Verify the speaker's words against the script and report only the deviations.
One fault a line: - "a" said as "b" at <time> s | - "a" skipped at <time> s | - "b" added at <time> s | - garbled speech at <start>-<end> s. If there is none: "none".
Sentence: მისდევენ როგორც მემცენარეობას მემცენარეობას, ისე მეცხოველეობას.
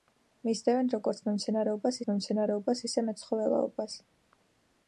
none